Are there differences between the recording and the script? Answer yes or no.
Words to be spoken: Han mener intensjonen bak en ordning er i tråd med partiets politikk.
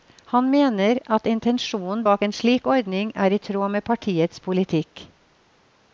yes